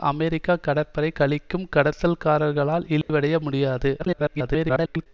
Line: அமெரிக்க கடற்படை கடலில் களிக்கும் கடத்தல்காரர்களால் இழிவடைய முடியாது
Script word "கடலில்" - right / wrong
wrong